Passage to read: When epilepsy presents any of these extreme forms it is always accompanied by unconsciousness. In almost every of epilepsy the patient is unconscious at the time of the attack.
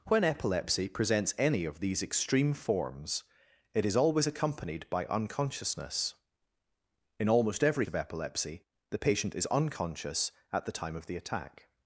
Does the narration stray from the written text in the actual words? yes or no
no